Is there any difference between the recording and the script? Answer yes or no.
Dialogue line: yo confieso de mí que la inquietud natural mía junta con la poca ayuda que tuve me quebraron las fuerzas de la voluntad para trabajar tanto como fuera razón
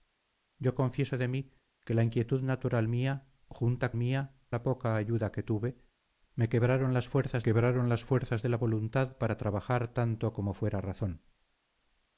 yes